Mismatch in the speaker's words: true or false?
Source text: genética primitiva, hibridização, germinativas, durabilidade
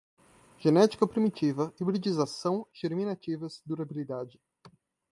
false